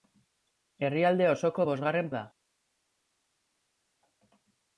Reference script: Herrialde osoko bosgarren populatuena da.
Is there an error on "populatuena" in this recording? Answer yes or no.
yes